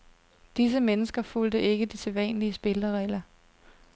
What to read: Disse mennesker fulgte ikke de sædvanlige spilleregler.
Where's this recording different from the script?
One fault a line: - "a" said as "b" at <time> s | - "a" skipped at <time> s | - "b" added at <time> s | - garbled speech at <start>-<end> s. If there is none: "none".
none